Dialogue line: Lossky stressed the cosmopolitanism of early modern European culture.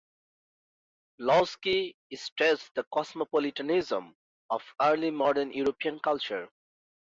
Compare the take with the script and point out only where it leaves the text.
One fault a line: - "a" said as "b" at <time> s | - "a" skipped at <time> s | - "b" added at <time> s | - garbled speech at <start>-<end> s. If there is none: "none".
none